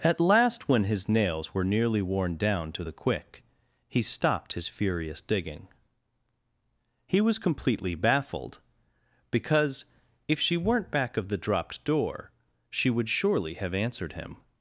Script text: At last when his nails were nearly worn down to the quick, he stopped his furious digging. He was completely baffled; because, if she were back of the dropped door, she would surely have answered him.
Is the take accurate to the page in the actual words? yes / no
no